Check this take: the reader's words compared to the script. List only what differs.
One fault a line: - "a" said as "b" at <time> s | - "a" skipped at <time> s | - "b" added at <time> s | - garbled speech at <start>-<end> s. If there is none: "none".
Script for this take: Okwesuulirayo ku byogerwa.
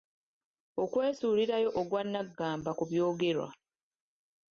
- "ogwannaggamba" added at 1.8 s